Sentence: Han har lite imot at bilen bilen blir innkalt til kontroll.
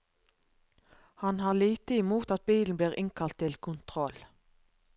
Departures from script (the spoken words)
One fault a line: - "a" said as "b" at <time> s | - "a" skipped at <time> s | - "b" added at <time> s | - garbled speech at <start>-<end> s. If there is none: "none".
- "bilen" skipped at 2.8 s